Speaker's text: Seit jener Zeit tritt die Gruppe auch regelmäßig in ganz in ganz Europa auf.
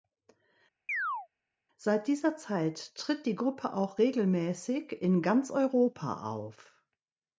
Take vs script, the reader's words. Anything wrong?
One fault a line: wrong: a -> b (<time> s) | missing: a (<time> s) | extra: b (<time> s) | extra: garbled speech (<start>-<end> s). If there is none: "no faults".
wrong: jener -> dieser (2.1 s)
missing: in ganz (5.5 s)